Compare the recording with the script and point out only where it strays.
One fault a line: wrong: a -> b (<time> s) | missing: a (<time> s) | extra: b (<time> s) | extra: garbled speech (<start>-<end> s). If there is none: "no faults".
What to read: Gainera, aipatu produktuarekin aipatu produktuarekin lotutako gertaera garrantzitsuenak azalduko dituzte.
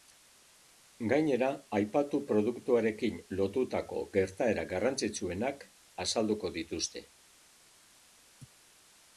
missing: aipatu produktuarekin (3.2 s)